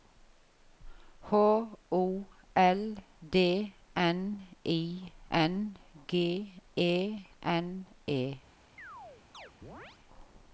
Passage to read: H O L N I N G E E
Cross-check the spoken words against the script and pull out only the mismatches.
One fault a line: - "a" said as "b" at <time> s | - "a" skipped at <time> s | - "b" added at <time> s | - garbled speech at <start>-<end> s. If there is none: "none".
- "D" added at 3.3 s
- "N" added at 7.4 s